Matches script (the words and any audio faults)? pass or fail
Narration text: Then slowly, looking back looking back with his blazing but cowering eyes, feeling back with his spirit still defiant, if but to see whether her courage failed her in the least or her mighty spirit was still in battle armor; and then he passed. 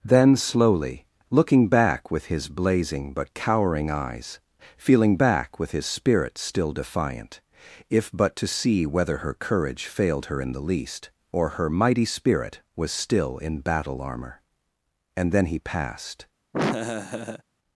fail